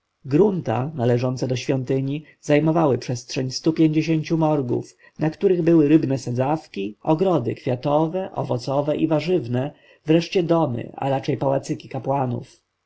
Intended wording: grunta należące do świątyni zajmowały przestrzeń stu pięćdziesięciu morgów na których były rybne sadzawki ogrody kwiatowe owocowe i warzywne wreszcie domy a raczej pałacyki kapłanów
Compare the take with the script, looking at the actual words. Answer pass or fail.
pass